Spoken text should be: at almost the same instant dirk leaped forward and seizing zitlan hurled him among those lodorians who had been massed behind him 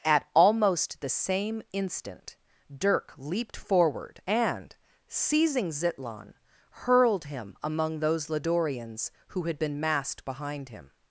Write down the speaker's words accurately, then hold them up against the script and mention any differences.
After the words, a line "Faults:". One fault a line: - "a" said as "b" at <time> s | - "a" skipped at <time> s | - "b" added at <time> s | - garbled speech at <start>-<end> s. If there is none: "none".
at almost the same instant dirk leaped forward and seizing zitlan hurled him among those lodorians who had been massed behind him
Faults:
none